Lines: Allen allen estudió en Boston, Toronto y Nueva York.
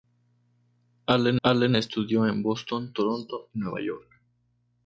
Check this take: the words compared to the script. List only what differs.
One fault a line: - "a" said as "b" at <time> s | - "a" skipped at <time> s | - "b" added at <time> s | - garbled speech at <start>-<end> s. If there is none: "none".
none